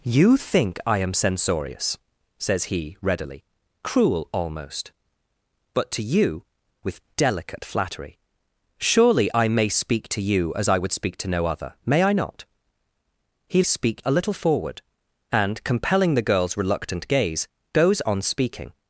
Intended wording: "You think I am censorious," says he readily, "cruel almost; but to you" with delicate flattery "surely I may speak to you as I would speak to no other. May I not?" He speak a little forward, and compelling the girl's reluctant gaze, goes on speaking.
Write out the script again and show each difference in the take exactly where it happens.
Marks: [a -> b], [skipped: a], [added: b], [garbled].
"You think I am censorious," says he readily, "cruel almost; but to you" with delicate flattery "surely I may speak to you as I would speak to no other. May I not?" He speak a little forward, and compelling the girl's reluctant gaze, goes on speaking.